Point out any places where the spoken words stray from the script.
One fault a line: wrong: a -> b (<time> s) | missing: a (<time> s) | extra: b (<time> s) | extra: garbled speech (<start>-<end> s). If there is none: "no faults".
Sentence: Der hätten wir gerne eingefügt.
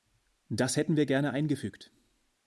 wrong: Der -> Das (0.5 s)